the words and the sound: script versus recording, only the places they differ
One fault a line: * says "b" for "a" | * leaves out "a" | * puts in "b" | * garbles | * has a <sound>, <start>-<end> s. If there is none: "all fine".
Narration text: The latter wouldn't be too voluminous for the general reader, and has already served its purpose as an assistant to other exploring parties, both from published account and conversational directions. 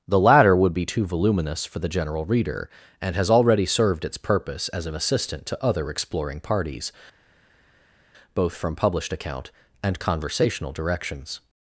* says "would" for "wouldn't"